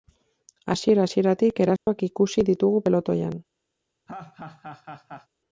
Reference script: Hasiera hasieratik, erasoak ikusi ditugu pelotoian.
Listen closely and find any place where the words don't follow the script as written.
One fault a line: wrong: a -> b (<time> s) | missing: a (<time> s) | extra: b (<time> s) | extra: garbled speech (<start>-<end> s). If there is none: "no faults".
no faults